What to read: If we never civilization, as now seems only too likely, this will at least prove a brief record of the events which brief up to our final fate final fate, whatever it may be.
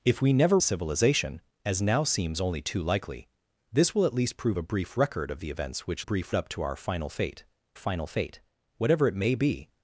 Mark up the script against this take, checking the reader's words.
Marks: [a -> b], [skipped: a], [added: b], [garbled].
If we never civilization, as now seems only too likely, this will at least prove a brief record of the events which brief up to our final fate final fate, whatever it may be.